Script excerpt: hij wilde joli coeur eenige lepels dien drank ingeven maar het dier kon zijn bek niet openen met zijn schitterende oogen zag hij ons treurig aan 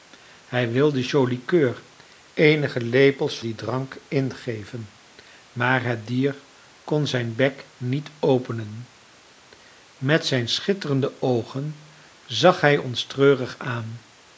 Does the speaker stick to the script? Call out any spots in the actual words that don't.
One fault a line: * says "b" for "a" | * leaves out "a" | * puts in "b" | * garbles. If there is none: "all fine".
all fine